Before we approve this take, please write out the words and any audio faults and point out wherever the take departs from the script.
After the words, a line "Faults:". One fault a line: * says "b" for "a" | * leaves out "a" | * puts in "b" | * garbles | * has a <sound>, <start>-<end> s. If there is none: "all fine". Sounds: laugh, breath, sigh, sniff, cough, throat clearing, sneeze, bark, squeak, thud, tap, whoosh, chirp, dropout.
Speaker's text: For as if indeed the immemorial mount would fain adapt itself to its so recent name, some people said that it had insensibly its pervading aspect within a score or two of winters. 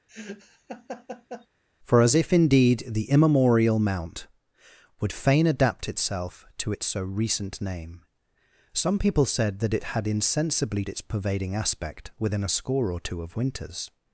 For as if indeed the immemorial mount would fain adapt itself to its so recent name, some people said that it had insensibly its pervading aspect within a score or two of winters.
Faults:
* has a laugh, 0.1-1.5 s